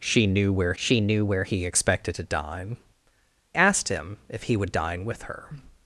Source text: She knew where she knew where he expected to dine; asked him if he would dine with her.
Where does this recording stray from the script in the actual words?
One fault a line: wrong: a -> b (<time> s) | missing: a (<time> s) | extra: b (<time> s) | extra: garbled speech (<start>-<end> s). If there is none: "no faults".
no faults